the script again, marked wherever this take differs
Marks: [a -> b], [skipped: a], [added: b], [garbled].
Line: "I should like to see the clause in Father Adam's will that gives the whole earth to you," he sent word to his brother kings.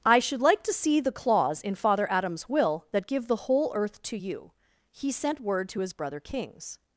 "I should like to see the clause in Father Adam's will that [gives -> give] the whole earth to you," he sent word to his brother kings.